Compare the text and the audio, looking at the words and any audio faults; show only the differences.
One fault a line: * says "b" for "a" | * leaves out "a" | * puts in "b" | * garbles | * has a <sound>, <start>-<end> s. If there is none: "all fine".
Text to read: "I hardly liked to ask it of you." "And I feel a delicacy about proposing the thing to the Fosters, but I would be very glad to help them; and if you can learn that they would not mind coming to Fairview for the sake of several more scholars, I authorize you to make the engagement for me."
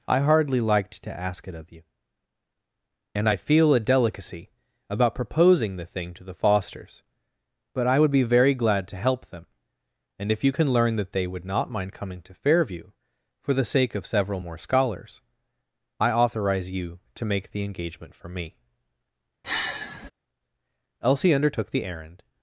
* has a sigh, 19.4-20.1 s
* puts in "Elsie undertook the errand"